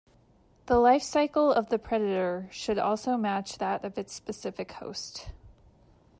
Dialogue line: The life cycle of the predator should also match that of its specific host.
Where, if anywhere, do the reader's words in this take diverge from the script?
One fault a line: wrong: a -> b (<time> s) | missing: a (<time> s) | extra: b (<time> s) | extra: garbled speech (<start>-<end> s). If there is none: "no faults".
no faults